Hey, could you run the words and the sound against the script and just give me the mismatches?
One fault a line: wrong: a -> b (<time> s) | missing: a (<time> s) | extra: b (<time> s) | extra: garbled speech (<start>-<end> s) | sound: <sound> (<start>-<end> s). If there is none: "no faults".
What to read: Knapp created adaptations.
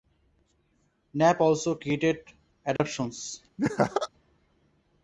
extra: also (1.4 s)
sound: dropout (2.8-2.8 s)
sound: laugh (3.6-4.1 s)